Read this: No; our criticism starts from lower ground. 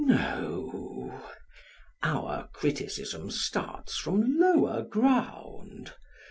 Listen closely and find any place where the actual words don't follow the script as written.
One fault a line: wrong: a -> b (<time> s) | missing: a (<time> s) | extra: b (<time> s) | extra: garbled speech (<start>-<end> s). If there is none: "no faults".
no faults